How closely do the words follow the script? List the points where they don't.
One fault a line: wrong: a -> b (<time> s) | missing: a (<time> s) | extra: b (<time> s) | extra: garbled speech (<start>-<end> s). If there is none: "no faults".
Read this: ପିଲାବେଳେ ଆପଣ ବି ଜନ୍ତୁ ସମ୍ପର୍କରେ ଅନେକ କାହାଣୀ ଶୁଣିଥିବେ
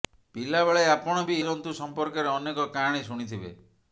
no faults